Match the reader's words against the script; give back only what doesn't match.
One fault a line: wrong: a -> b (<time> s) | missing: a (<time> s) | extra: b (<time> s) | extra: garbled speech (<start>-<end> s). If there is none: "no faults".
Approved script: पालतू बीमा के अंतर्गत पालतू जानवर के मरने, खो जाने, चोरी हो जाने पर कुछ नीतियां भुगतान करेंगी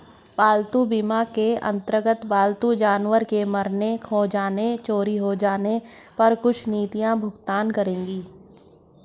no faults